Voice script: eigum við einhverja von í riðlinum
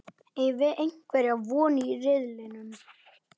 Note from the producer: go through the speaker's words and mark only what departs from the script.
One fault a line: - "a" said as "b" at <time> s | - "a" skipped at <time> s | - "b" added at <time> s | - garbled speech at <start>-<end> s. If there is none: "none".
none